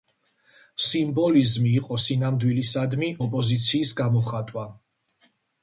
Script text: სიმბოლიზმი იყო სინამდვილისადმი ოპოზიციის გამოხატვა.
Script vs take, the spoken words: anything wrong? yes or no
no